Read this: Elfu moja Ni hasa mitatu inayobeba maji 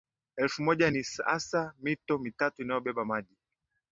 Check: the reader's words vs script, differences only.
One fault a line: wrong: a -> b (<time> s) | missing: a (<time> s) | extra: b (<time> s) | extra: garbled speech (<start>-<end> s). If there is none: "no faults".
extra: mito (1.8 s)